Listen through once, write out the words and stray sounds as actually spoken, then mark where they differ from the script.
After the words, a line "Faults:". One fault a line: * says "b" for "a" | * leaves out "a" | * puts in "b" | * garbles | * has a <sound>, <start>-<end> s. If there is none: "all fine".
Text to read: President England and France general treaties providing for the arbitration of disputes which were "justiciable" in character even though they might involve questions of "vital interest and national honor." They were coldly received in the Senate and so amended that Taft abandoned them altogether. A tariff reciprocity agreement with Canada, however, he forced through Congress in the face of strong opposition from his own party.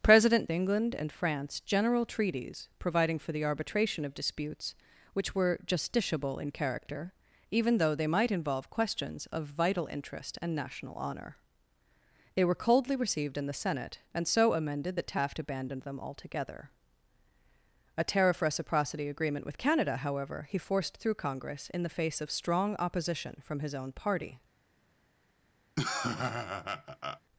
President England and France general treaties providing for the arbitration of disputes which were "justiciable" in character even though they might involve questions of "vital interest and national honor." They were coldly received in the Senate and so amended that Taft abandoned them altogether. A tariff reciprocity agreement with Canada, however, he forced through Congress in the face of strong opposition from his own party.
Faults:
* has a laugh, 25.8-27.2 s